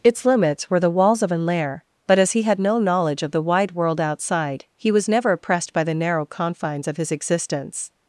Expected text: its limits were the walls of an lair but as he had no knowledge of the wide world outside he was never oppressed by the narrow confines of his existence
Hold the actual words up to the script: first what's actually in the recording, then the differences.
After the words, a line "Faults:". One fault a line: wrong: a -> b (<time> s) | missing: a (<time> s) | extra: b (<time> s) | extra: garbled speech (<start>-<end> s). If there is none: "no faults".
its limits were the walls of an lair but as he had no knowledge of the wide world outside he was never oppressed by the narrow confines of his existence
Faults:
no faults